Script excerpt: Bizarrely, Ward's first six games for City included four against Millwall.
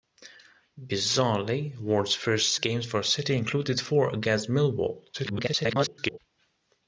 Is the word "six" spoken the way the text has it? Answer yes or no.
no